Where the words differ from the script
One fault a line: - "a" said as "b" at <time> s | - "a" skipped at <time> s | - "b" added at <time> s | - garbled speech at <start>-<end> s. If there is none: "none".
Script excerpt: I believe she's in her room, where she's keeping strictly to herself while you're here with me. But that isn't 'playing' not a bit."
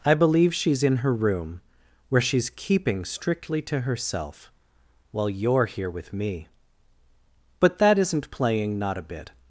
none